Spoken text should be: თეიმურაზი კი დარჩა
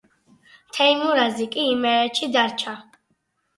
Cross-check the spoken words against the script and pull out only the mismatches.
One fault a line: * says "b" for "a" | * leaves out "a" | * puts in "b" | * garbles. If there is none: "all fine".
* puts in "იმერეთში"